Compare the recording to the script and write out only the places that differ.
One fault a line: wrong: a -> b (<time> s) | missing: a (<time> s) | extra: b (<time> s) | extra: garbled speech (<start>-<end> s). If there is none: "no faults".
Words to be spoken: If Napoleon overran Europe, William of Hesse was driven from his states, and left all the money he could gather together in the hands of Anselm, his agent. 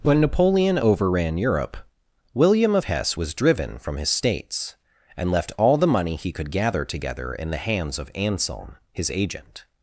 wrong: If -> When (0.0 s)